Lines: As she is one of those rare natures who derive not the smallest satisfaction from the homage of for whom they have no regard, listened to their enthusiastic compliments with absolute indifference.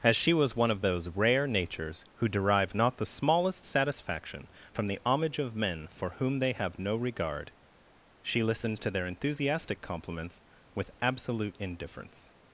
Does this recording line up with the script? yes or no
no